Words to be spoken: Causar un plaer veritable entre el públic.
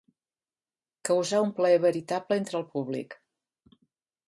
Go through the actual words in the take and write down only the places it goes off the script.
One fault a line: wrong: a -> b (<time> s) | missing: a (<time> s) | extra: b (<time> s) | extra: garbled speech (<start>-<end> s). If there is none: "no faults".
no faults